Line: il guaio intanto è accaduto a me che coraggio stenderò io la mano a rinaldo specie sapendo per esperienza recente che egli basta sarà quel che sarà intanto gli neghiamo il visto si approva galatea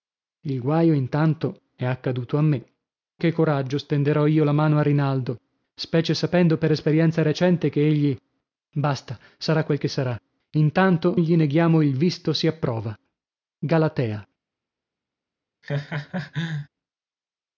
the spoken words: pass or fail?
pass